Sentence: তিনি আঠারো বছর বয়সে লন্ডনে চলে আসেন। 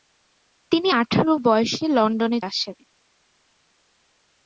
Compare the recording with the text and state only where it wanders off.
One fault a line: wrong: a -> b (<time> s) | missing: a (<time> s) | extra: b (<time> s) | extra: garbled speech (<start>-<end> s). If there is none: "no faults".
missing: বছর (1.3 s)
missing: চলে (2.4 s)